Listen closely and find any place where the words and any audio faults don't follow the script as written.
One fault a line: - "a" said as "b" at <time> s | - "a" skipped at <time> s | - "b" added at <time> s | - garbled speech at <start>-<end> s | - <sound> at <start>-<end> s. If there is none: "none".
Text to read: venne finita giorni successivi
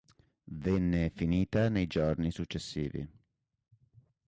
- "nei" added at 1.7 s